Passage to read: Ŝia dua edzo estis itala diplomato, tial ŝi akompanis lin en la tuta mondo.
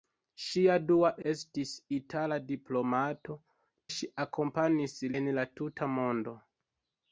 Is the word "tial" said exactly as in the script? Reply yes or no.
no